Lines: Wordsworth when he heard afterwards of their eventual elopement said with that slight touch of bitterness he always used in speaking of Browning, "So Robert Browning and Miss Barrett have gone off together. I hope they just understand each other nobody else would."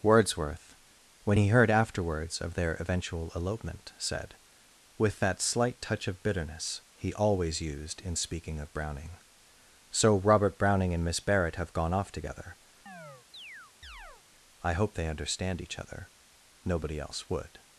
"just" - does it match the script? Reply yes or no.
no